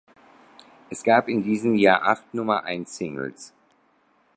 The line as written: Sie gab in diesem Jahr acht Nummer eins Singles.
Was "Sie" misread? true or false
true